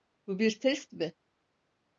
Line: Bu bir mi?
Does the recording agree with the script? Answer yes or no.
no